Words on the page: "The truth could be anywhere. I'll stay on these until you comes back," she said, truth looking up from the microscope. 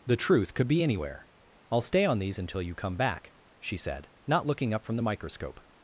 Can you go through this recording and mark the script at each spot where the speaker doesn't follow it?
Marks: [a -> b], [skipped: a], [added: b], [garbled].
"The truth could be anywhere. I'll stay on these until you [comes -> come] back," she said, [truth -> not] looking up from the microscope.